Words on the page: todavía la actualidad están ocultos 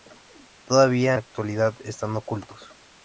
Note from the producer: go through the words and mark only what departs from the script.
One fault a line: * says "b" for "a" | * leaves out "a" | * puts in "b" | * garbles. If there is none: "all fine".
all fine